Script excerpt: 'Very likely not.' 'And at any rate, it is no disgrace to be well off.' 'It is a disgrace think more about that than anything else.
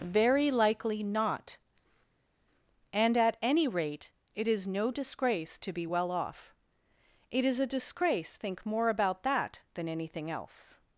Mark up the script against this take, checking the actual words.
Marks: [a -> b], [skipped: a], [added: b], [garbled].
'Very likely not.' 'And at any rate, it is no disgrace to be well off.' 'It is a disgrace think more about that than anything else.